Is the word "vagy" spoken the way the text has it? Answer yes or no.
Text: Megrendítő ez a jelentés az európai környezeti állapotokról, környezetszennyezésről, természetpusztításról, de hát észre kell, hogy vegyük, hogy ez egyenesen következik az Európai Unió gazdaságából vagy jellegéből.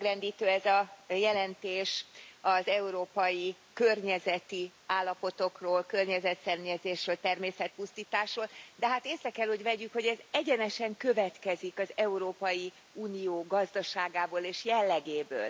no